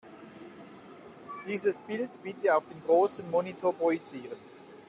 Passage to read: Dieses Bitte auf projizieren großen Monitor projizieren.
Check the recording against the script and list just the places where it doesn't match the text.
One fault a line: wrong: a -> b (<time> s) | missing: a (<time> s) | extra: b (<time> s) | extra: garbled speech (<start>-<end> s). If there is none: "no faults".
extra: Bild (1.8 s)
wrong: projizieren -> den (2.6 s)